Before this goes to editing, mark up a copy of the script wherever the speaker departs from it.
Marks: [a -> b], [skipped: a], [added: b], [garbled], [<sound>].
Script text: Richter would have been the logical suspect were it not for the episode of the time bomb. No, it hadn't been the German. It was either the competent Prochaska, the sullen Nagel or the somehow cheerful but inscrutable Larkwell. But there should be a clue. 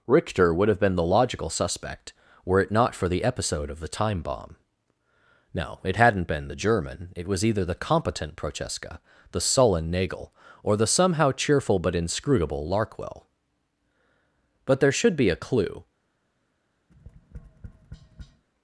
Richter would have been the logical suspect were it not for the episode of the time bomb. No, it hadn't been the German. It was either the competent Prochaska, the sullen Nagel or the somehow cheerful but inscrutable Larkwell. But there should be a clue. [tap]